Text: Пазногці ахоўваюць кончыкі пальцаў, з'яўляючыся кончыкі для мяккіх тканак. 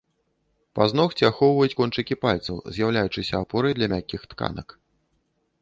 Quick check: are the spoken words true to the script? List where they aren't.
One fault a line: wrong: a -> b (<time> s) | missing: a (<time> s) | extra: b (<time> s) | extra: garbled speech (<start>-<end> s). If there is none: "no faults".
wrong: кончыкі -> апорай (3.5 s)